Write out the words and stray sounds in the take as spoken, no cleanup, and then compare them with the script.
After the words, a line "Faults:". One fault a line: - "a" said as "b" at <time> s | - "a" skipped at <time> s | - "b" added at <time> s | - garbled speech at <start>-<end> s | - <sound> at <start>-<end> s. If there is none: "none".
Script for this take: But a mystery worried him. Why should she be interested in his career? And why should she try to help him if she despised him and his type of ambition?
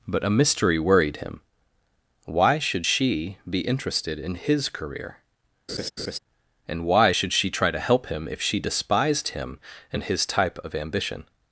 But a mystery worried him. Why should she be interested in his career? And why should she try to help him if she despised him and his type of ambition?
Faults:
- laugh at 5.7-6.2 s